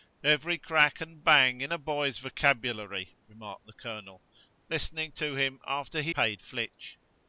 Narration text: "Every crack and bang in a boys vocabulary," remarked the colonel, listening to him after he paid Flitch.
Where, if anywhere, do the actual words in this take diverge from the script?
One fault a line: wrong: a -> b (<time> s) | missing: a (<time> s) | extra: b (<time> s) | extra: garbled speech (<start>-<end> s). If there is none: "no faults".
no faults